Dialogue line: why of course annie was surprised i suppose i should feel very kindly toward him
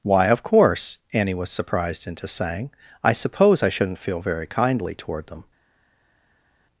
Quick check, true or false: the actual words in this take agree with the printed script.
false